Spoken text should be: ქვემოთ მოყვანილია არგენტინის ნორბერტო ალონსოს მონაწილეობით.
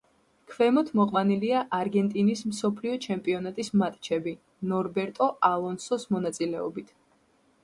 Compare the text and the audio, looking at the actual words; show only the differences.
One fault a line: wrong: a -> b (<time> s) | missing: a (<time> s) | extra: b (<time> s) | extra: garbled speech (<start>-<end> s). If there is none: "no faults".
extra: მსოფლიო ჩემპიონატის მატჩები (2.5 s)